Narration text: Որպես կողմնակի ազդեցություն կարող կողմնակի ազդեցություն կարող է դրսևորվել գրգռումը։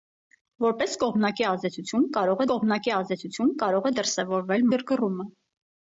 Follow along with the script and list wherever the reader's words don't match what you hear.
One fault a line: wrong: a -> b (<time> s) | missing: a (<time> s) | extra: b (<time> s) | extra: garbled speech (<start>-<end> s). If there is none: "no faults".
no faults